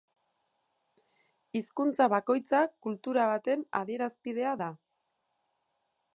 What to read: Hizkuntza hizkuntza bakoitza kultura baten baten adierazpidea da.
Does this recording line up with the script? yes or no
no